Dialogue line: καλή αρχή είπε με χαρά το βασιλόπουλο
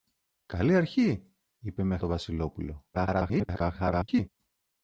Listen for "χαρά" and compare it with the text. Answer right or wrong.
wrong